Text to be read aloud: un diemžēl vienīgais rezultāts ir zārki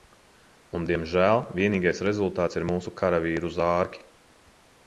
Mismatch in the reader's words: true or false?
true